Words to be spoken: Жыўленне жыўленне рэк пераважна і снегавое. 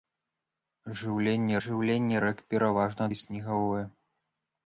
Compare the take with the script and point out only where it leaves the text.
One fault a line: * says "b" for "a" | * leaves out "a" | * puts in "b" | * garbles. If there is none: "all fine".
all fine